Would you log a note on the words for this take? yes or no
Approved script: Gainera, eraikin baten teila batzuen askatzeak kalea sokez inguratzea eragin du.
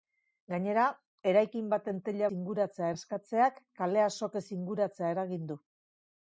yes